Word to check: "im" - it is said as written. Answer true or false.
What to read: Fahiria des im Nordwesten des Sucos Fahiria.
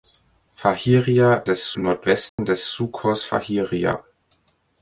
true